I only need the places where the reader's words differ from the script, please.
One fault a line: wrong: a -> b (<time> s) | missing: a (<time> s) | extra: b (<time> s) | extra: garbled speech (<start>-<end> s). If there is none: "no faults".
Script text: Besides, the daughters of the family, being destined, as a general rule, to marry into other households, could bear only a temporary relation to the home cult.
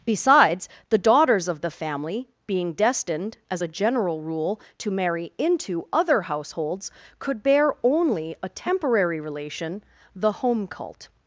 missing: to (9.8 s)